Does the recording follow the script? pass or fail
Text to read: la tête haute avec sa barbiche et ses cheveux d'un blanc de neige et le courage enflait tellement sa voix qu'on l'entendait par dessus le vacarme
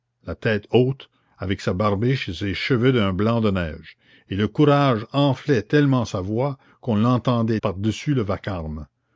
pass